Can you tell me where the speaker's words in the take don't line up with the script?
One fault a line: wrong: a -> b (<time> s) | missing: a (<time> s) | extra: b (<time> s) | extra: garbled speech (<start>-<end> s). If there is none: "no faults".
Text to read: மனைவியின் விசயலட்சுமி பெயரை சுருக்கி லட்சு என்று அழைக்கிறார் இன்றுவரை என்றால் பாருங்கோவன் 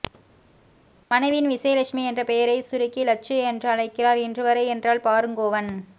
extra: என்ற (2.0 s)